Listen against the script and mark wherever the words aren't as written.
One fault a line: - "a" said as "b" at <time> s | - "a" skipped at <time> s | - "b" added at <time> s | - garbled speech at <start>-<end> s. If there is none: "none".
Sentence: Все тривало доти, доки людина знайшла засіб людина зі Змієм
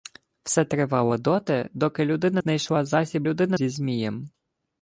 none